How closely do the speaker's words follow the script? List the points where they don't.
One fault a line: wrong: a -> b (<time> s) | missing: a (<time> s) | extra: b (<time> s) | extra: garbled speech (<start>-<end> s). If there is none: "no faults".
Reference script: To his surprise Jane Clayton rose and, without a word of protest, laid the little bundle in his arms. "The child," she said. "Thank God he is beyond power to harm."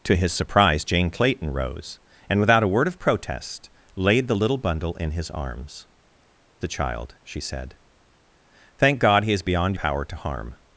no faults